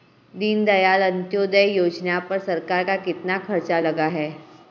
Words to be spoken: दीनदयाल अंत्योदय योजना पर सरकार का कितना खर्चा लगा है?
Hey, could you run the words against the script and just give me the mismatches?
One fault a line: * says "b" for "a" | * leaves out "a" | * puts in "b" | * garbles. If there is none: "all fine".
all fine